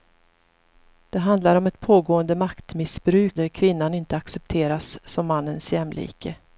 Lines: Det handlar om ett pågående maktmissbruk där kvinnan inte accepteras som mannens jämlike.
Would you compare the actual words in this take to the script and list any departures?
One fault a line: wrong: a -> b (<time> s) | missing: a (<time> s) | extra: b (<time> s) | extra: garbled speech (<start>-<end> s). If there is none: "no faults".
no faults